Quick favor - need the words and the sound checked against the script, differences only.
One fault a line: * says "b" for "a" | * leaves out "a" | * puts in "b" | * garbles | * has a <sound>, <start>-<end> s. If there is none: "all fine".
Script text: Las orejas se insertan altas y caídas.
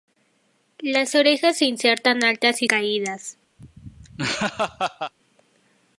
* has a laugh, 3.6-5.1 s